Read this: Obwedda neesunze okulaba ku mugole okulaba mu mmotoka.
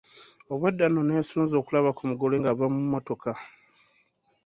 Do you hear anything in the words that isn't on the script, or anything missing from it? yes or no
yes